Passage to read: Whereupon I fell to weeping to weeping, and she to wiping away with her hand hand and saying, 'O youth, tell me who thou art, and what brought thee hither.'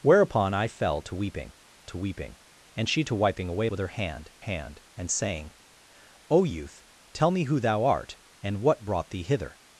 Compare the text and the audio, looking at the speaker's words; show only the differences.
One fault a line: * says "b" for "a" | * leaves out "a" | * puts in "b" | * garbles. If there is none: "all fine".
all fine